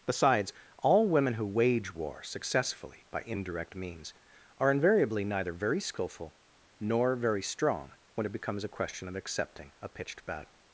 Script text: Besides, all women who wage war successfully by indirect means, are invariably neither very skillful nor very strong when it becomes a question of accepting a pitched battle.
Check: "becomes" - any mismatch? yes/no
no